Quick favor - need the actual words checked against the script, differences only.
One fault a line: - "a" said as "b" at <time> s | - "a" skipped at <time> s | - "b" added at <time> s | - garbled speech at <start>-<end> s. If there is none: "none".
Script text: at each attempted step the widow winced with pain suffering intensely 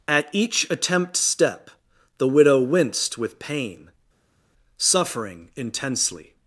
- "attempted" said as "attempt" at 0.7 s